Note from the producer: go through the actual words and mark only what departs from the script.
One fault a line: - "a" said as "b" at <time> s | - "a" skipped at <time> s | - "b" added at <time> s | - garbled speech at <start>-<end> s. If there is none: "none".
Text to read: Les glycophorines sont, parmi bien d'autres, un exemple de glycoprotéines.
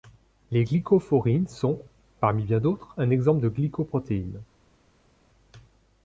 none